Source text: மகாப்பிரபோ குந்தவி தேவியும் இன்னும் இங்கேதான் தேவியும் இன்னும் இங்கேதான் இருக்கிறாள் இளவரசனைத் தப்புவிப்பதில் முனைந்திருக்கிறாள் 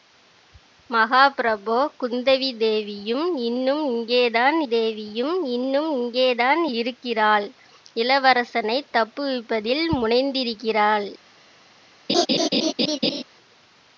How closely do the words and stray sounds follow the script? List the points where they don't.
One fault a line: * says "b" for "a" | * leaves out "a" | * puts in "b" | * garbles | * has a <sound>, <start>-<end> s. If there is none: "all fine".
* has a laugh, 12.1-13.2 s